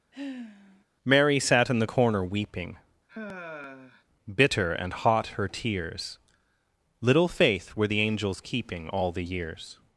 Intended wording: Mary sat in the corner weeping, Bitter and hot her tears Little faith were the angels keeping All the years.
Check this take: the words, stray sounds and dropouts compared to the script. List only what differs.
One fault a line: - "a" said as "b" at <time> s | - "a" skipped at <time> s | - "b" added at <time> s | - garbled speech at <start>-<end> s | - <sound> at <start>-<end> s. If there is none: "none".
- sigh at 0.1-0.8 s
- sigh at 3.1-4.0 s